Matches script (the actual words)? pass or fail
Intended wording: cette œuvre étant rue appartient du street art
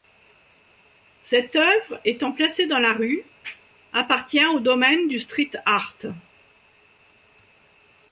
fail